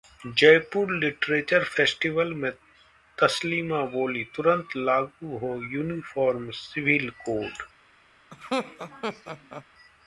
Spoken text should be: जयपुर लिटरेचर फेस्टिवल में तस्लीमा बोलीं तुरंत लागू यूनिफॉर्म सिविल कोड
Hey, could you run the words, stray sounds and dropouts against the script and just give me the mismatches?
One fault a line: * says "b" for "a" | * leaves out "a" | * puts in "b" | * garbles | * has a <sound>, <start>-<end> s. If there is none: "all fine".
* puts in "हो"
* has a laugh, 8.3-9.7 s